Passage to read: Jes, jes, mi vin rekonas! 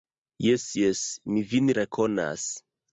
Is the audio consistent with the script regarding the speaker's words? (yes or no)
yes